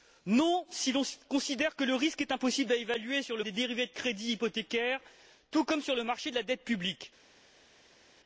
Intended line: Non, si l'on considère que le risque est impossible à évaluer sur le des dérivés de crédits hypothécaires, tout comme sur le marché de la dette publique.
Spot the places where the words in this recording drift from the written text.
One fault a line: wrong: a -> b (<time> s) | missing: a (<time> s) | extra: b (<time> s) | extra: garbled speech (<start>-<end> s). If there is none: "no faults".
no faults